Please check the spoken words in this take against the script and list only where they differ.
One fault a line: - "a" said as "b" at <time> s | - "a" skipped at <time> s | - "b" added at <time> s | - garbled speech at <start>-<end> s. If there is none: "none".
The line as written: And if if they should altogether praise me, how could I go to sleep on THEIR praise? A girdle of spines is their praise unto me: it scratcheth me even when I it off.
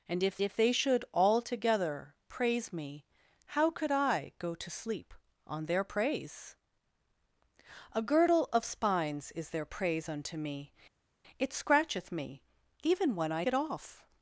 none